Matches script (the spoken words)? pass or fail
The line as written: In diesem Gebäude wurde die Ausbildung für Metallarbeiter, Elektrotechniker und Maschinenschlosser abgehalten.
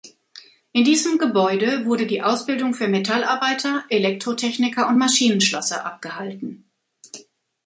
pass